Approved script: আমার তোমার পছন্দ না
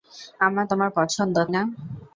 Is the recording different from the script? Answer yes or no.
no